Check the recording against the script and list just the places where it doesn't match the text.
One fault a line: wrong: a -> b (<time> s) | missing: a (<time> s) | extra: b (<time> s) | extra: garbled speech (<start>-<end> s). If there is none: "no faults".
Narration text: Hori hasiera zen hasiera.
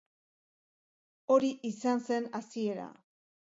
wrong: hasiera -> izan (1.7 s)